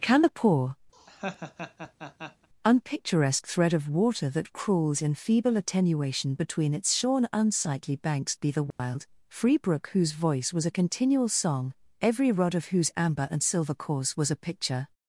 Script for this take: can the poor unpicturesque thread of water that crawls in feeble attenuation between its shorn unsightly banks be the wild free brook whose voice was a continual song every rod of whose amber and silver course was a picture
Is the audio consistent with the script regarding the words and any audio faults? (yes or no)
no